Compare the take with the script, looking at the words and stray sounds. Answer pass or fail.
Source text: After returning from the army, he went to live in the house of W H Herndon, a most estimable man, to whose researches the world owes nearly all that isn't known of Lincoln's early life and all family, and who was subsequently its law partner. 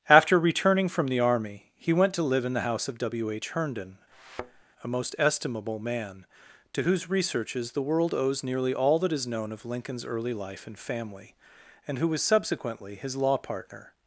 fail